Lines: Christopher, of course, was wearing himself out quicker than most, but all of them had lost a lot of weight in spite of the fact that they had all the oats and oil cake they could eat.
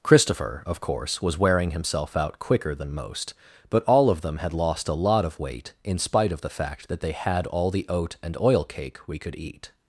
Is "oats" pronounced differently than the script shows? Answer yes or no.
yes